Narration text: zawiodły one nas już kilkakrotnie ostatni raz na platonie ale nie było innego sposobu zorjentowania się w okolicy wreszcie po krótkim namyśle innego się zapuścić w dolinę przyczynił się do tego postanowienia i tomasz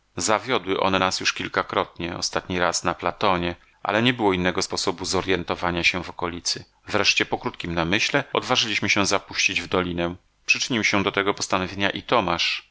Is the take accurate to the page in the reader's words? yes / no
no